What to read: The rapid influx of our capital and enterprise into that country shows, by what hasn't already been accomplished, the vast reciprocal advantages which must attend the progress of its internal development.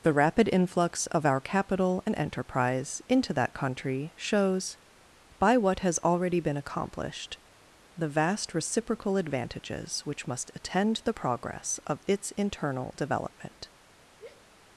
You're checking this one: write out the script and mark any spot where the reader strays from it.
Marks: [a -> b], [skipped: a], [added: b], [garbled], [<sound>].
The rapid influx of our capital and enterprise into that country shows, by what [hasn't -> has] already been accomplished, the vast reciprocal advantages which must attend the progress of its internal development. [sigh]